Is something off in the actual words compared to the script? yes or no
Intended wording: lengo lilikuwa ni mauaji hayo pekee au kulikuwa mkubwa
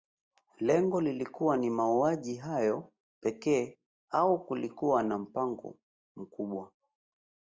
yes